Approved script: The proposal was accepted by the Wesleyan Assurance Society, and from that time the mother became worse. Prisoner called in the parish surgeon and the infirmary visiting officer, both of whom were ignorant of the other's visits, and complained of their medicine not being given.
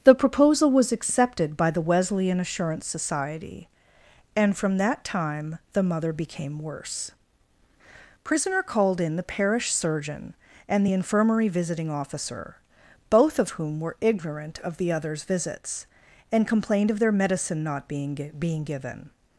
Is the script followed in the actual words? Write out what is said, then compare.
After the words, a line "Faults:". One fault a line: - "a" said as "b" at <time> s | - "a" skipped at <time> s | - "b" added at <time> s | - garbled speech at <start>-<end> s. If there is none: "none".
The proposal was accepted by the Wesleyan Assurance Society, and from that time the mother became worse. Prisoner called in the parish surgeon and the infirmary visiting officer, both of whom were ignorant of the other's visits, and complained of their medicine not being being given.
Faults:
- "being" added at 18.4 s